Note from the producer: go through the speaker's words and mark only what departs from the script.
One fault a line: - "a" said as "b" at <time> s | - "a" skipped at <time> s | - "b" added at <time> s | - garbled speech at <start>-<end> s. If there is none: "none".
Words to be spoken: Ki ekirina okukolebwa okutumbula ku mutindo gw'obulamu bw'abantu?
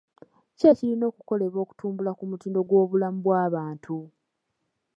none